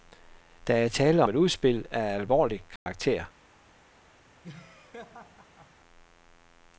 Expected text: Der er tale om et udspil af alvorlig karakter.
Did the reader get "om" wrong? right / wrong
wrong